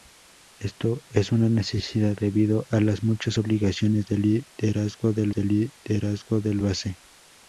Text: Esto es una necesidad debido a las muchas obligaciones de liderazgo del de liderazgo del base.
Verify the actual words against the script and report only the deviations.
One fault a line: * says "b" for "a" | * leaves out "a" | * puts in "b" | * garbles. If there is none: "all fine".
all fine